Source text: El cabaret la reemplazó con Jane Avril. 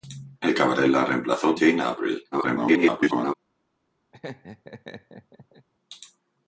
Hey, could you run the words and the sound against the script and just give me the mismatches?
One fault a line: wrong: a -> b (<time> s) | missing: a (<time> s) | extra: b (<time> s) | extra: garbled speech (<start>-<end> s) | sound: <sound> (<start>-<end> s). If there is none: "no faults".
missing: con (1.6 s)
extra: garbled speech (2.3-3.3 s)
sound: laugh (4.1-5.7 s)